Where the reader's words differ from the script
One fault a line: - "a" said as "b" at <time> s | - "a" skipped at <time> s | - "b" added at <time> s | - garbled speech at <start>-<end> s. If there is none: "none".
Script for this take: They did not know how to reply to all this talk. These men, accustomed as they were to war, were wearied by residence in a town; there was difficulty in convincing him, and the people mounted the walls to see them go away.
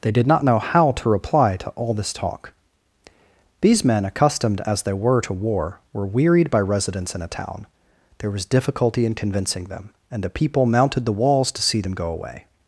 - "him" said as "them" at 9.6 s